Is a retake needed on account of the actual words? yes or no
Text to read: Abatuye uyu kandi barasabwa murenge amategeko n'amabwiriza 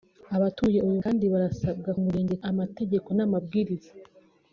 no